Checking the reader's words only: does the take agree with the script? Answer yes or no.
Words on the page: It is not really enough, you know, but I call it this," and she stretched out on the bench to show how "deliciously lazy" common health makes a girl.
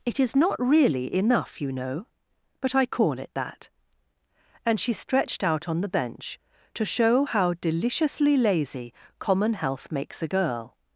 no